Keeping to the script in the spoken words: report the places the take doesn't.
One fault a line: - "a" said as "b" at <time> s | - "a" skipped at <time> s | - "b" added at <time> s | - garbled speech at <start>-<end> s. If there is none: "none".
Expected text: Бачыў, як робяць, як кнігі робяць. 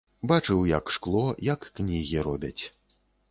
- "робяць" said as "шкло" at 0.9 s